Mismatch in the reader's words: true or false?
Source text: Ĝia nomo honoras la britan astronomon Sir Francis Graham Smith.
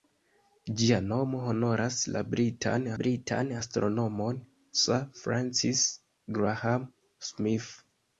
true